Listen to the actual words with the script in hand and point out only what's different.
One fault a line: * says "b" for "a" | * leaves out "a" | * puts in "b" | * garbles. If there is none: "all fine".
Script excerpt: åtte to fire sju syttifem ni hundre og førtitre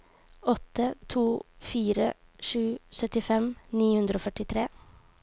all fine